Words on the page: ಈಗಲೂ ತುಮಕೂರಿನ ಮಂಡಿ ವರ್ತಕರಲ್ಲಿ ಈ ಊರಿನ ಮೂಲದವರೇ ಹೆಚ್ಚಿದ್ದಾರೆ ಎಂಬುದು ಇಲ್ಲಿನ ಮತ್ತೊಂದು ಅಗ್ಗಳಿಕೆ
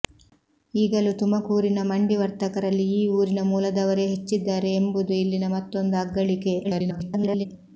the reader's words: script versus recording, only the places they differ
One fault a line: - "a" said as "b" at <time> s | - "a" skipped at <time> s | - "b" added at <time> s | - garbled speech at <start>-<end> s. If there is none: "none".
- garbled speech at 6.6-7.5 s